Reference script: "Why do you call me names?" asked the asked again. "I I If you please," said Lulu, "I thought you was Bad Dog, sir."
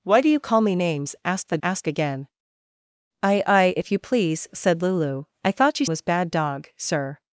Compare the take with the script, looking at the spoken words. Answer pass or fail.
pass